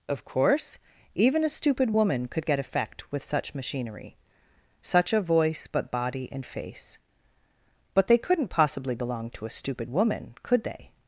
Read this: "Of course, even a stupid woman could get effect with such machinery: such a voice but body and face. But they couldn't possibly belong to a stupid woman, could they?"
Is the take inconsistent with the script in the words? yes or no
no